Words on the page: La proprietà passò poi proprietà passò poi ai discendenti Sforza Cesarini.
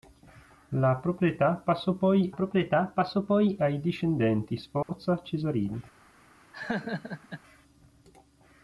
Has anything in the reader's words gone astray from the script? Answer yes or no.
no